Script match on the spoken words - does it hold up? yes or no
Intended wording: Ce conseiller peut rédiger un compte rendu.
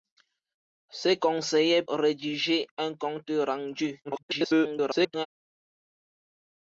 no